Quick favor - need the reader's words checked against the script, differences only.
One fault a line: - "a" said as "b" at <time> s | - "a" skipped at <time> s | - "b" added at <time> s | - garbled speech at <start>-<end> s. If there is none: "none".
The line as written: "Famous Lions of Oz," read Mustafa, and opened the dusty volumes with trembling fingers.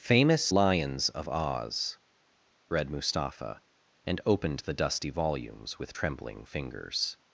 none